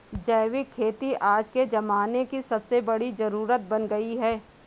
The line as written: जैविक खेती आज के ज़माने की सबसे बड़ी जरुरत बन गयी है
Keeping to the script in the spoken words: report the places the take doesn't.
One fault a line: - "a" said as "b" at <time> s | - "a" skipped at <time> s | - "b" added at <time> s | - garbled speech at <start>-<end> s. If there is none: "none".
none